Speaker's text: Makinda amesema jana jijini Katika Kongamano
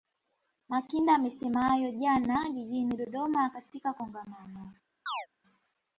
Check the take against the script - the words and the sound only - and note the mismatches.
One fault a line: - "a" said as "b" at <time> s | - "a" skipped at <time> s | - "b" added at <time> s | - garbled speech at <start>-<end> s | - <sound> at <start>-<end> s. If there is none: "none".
- "hayo" added at 1.6 s
- "Dodoma" added at 2.9 s
- chirp at 5.1-5.3 s